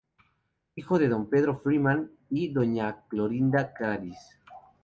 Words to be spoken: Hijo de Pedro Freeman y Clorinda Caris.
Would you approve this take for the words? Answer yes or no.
no